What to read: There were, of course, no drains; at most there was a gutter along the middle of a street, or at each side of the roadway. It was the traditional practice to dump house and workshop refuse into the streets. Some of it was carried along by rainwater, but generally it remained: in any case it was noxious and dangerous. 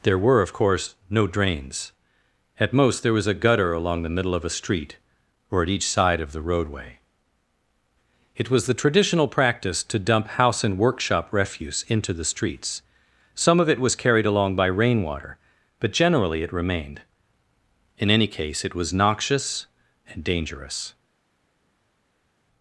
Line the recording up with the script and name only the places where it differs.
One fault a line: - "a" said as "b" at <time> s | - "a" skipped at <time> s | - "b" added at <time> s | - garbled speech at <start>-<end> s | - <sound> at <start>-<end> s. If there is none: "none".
none